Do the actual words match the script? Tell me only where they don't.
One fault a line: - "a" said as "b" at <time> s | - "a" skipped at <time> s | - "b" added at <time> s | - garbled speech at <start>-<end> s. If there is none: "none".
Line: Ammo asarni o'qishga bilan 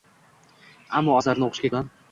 none